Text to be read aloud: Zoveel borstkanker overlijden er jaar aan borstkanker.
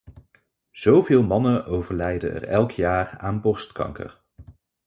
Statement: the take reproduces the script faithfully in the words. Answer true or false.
false